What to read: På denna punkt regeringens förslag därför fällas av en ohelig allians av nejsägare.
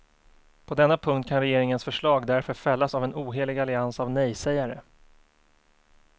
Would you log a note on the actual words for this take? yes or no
yes